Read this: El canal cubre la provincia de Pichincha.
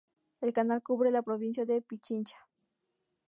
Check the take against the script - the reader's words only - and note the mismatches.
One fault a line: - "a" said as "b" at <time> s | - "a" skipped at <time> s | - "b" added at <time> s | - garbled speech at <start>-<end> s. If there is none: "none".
none